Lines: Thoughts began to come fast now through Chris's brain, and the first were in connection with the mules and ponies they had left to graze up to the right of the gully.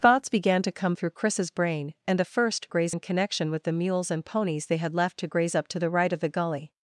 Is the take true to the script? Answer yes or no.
no